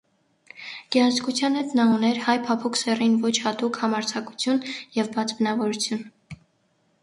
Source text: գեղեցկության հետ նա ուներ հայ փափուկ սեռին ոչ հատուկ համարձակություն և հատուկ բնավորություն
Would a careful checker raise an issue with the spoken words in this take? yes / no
yes